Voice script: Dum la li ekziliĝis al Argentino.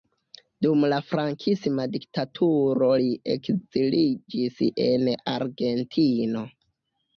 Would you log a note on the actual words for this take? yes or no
yes